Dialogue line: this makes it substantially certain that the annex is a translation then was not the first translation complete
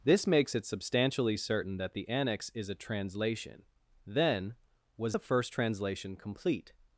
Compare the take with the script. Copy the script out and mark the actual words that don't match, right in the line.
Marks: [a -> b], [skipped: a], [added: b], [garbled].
this makes it substantially certain that the annex is a translation then was [skipped: not] the first translation complete